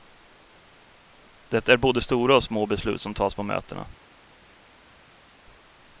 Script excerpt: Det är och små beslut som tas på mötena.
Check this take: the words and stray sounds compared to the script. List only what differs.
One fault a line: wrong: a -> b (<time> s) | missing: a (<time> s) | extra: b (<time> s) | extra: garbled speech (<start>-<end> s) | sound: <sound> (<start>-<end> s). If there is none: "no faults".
extra: både stora (1.8 s)